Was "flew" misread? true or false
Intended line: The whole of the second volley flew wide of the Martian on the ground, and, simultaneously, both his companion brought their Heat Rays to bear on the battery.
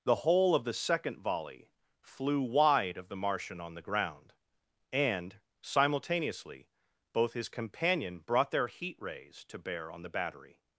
false